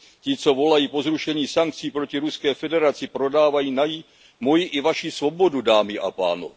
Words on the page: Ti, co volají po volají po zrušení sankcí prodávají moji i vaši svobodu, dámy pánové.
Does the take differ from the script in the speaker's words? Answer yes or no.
yes